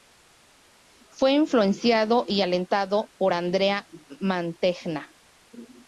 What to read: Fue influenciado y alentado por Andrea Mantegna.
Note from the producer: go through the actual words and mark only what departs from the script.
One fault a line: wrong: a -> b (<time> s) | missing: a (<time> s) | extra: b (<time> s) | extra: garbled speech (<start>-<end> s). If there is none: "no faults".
no faults